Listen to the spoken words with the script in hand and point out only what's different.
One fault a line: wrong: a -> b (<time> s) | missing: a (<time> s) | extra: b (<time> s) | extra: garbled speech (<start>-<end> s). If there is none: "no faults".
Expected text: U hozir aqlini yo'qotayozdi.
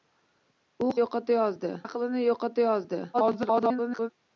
wrong: hozir -> yo'qotayozdi (1.0 s)
extra: garbled speech (3.1-4.1 s)